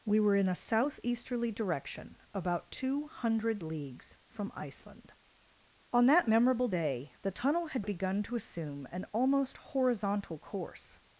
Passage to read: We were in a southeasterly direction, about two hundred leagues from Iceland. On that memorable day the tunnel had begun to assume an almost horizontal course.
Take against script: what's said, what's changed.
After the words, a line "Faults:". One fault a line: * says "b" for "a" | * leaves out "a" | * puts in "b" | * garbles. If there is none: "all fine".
We were in a southeasterly direction, about two hundred leagues from Iceland. On that memorable day the tunnel had begun to assume an almost horizontal course.
Faults:
all fine